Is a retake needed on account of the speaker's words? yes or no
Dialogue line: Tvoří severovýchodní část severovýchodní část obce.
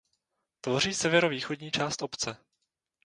yes